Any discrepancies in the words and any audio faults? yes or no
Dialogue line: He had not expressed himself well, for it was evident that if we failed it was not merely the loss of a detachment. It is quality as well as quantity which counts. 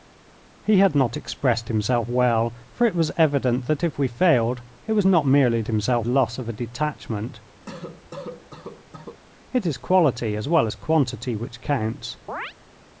yes